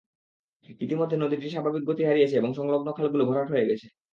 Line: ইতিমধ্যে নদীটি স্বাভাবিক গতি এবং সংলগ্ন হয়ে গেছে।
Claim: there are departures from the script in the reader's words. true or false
true